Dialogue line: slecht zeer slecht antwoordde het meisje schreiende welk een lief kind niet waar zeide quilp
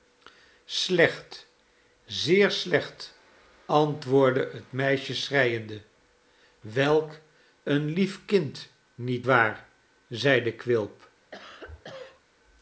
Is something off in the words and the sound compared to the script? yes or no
yes